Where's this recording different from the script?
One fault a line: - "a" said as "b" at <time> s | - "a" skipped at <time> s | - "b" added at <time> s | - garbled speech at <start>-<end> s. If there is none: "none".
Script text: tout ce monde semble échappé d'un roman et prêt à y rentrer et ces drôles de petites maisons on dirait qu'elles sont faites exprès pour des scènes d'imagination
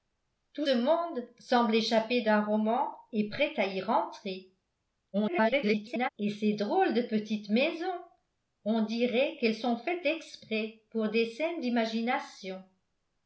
- "ce" skipped at 0.7 s
- garbled speech at 5.1-6.1 s